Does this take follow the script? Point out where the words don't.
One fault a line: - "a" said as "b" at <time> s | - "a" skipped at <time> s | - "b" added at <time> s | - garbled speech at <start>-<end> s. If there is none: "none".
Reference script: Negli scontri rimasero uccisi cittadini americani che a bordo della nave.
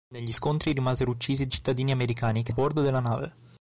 none